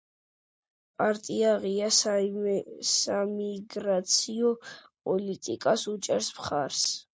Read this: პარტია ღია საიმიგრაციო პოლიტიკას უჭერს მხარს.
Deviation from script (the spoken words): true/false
false